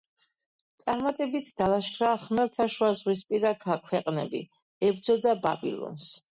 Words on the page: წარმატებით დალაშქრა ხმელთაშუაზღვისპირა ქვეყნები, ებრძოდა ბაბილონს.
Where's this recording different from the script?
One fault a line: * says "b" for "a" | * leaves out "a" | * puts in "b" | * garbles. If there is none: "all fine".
all fine